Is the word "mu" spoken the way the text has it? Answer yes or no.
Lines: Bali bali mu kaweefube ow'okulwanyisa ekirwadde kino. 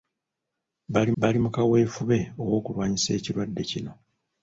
yes